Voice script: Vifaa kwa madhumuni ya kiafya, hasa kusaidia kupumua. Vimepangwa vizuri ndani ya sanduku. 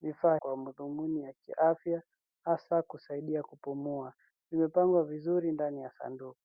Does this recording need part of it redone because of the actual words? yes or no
no